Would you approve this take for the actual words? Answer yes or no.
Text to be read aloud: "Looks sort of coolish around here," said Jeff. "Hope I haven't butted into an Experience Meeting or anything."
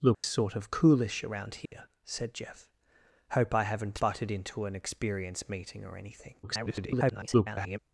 no